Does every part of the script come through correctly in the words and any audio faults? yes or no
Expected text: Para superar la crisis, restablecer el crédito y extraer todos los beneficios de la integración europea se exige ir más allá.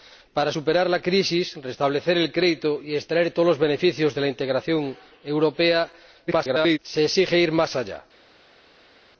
no